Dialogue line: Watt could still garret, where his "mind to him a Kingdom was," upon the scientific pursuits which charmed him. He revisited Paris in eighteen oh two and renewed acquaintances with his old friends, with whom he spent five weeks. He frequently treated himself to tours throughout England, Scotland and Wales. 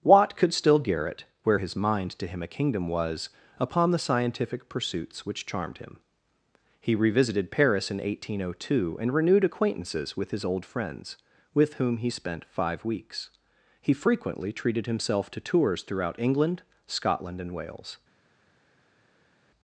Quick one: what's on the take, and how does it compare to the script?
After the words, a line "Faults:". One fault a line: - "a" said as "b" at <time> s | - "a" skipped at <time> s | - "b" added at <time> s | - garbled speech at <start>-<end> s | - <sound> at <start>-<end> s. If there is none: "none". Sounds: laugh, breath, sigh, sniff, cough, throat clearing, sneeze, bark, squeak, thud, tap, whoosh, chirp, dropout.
Watt could still garret, where his "mind to him a Kingdom was," upon the scientific pursuits which charmed him. He revisited Paris in eighteen oh two and renewed acquaintances with his old friends, with whom he spent five weeks. He frequently treated himself to tours throughout England, Scotland and Wales.
Faults:
none